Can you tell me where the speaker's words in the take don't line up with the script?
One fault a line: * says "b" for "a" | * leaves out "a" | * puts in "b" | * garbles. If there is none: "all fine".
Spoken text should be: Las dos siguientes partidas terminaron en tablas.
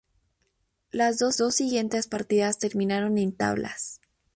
* puts in "dos"